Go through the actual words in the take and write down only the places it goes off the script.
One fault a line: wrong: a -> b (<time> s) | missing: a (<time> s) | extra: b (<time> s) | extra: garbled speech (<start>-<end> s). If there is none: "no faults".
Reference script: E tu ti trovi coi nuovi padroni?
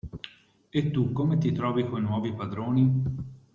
extra: come (1.1 s)